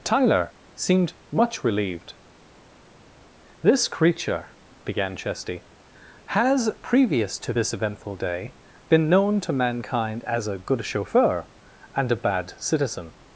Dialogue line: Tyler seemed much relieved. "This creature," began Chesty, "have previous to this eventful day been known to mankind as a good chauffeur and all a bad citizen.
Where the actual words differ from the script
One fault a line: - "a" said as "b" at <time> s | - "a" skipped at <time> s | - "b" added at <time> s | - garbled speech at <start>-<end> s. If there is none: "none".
- "have" said as "has" at 6.3 s
- "all" skipped at 12.1 s